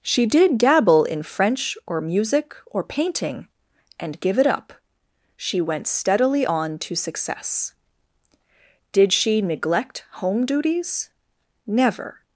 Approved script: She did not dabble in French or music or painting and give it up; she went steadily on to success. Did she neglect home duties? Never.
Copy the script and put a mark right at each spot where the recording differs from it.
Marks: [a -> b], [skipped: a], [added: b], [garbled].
She did [skipped: not] dabble in French or music or painting and give it up; she went steadily on to success. Did she neglect home duties? Never.